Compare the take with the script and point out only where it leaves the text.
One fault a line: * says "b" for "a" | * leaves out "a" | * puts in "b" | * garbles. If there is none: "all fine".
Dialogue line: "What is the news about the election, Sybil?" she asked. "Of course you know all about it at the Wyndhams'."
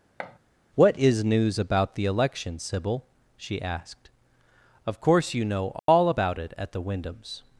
* leaves out "the"